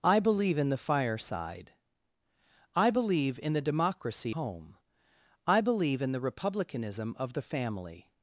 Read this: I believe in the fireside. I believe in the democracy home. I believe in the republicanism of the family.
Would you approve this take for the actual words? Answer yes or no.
yes